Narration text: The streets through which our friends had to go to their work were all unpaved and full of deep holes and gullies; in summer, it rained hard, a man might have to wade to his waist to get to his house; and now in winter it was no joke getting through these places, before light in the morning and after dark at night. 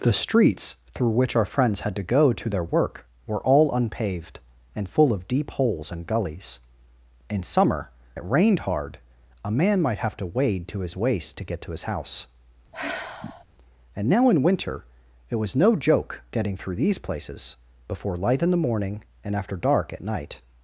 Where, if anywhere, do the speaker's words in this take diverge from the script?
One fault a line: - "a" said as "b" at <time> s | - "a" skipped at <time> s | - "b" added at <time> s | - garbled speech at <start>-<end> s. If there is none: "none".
none